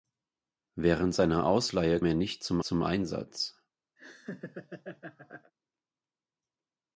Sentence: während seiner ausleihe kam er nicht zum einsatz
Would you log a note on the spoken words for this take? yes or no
yes